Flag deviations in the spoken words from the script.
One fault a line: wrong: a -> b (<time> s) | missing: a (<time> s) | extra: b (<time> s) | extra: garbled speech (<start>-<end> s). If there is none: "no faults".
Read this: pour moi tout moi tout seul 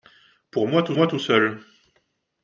no faults